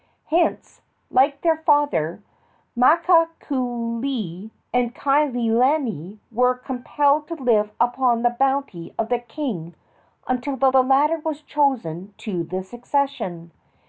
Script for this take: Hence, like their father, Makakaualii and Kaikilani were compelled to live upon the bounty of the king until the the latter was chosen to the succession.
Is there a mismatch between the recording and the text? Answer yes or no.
no